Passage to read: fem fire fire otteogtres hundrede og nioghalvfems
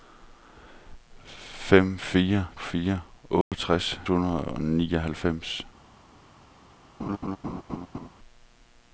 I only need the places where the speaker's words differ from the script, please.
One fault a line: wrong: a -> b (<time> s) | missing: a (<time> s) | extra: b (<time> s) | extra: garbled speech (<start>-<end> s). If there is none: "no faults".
no faults